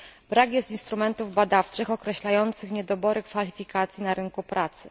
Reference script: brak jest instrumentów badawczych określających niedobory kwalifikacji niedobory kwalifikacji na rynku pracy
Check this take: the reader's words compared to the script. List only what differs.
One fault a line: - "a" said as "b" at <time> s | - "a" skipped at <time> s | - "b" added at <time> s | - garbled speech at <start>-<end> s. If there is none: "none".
- "niedobory kwalifikacji" skipped at 4.0 s